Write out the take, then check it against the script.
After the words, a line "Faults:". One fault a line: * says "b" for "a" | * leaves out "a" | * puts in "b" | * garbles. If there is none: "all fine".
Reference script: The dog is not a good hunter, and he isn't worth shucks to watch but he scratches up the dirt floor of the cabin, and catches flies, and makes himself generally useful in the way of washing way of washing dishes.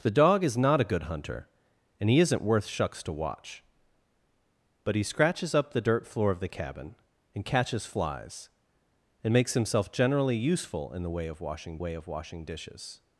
The dog is not a good hunter, and he isn't worth shucks to watch but he scratches up the dirt floor of the cabin, and catches flies, and makes himself generally useful in the way of washing way of washing dishes.
Faults:
all fine